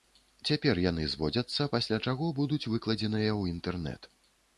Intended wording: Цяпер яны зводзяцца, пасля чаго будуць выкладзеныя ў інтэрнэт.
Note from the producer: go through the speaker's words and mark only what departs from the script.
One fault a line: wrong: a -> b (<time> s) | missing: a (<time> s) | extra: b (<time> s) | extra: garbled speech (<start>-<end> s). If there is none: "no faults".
no faults